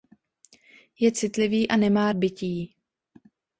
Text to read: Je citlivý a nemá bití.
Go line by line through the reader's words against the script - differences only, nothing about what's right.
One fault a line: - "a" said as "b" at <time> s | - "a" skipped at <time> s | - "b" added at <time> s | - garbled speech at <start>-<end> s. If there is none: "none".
none